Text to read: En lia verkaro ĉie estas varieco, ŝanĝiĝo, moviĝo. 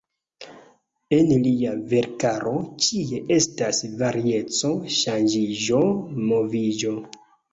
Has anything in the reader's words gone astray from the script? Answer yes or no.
no